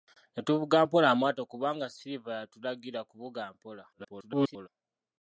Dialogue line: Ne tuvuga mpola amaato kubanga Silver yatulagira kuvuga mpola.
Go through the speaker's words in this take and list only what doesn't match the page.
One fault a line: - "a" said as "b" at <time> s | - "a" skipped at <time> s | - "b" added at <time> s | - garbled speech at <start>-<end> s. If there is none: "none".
- garbled speech at 3.9-4.7 s